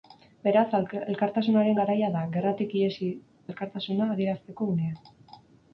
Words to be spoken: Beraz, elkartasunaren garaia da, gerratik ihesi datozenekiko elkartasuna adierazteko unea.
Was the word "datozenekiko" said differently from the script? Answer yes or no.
yes